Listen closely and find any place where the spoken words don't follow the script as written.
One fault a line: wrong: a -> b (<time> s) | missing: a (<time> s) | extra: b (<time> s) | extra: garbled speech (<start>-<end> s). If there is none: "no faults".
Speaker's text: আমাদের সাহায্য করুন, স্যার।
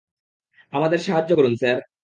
no faults